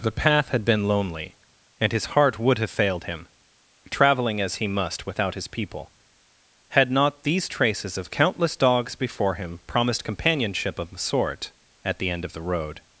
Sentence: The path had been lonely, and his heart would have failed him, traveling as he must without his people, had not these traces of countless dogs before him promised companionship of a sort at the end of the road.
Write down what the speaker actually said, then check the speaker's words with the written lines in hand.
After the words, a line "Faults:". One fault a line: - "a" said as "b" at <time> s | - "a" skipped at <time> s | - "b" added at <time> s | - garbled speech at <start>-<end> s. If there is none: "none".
The path had been lonely, and his heart would have failed him, traveling as he must without his people, had not these traces of countless dogs before him promised companionship of a sort at the end of the road.
Faults:
none